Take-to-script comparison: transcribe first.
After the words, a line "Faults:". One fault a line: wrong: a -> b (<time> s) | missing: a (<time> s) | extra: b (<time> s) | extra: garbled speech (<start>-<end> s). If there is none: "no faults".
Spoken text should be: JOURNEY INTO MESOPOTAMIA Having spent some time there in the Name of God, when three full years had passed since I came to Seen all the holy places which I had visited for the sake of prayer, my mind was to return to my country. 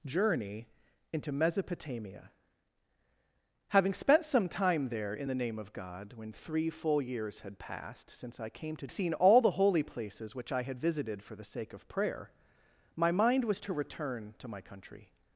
JOURNEY INTO MESOPOTAMIA Having spent some time there in the Name of God, when three full years had passed since I came to Seen all the holy places which I had visited for the sake of prayer, my mind was to return to my country.
Faults:
no faults